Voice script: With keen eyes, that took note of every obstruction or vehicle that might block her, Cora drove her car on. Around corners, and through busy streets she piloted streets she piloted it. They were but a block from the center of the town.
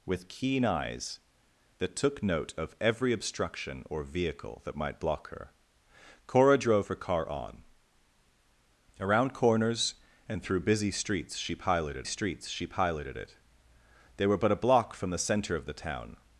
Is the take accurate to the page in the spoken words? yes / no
yes